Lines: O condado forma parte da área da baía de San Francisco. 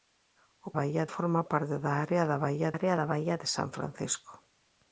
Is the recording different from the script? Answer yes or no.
yes